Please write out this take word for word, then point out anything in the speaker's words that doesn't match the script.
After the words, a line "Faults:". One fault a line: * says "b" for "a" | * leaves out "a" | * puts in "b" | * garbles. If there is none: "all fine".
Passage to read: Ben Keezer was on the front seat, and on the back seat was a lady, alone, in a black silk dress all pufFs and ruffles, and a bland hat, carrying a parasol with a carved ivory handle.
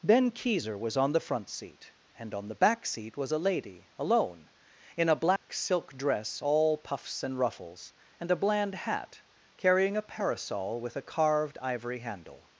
Ben Keezer was on the front seat, and on the back seat was a lady, alone, in a black silk dress all pufFs and ruffles, and a bland hat, carrying a parasol with a carved ivory handle.
Faults:
all fine